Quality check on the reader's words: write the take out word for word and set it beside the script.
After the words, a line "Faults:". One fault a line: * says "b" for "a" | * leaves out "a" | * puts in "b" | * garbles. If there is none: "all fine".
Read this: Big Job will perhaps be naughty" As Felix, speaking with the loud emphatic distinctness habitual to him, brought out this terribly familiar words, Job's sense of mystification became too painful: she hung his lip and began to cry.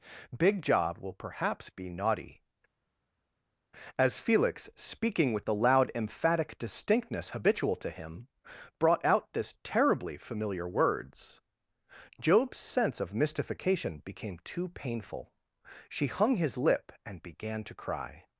Big Job will perhaps be naughty" As Felix, speaking with the loud emphatic distinctness habitual to him, brought out this terribly familiar words, Job's sense of mystification became too painful: she hung his lip and began to cry.
Faults:
all fine